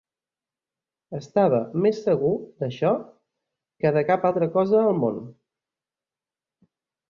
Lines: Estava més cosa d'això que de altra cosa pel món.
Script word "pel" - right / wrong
wrong